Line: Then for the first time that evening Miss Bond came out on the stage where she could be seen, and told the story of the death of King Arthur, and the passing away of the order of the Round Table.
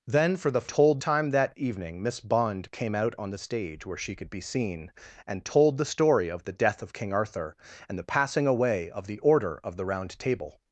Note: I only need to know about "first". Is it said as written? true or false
false